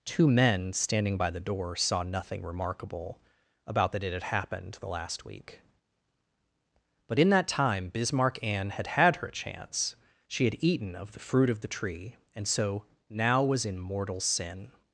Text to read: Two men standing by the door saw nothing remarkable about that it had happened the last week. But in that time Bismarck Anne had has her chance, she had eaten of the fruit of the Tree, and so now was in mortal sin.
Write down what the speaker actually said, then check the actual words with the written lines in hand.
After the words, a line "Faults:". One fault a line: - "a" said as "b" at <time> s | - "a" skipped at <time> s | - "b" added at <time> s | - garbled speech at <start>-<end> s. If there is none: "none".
Two men standing by the door saw nothing remarkable about that it had happened the last week. But in that time Bismarck Anne had had her chance, she had eaten of the fruit of the Tree, and so now was in mortal sin.
Faults:
- "has" said as "had" at 8.9 s